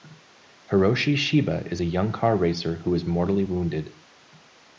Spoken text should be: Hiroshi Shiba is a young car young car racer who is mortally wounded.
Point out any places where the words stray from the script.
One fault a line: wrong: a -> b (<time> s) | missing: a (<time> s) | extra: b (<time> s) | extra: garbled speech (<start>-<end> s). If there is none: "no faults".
missing: young car (2.4 s)